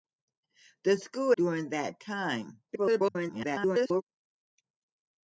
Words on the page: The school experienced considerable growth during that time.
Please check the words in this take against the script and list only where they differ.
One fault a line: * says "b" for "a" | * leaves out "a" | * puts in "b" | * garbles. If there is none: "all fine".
* leaves out "experienced considerable growth"
* garbles